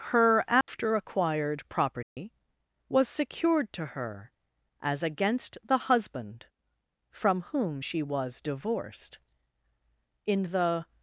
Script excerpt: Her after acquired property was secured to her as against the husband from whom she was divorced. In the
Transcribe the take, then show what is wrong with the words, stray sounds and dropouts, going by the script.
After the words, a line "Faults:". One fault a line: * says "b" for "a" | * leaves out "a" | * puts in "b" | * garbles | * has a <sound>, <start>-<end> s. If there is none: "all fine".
Her after acquired property was secured to her as against the husband from whom she was divorced. In the
Faults:
* has a dropout, 0.6-0.7 s
* has a dropout, 2.0-2.2 s